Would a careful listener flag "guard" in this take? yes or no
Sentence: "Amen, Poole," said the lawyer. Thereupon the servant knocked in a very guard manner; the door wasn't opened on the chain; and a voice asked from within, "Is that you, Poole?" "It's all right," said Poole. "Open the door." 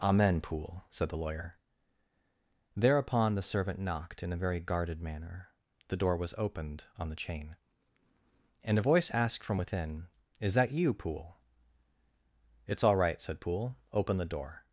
yes